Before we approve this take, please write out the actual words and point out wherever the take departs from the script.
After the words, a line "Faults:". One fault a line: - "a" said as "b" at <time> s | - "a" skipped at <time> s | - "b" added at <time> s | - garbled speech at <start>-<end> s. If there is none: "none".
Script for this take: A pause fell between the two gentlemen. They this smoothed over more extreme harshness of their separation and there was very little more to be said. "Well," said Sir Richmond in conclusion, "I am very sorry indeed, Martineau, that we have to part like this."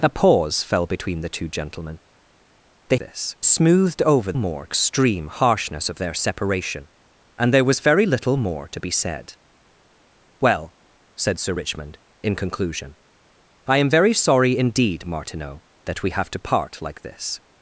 A pause fell between the two gentlemen. They this smoothed over more extreme harshness of their separation and there was very little more to be said. "Well," said Sir Richmond in conclusion, "I am very sorry indeed, Martineau, that we have to part like this."
Faults:
none